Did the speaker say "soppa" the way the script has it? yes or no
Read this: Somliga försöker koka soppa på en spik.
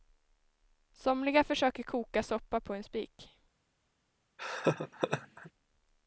yes